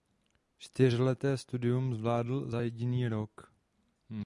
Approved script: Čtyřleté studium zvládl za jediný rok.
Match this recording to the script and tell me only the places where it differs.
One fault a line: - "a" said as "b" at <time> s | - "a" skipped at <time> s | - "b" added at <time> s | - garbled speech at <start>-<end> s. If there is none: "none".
none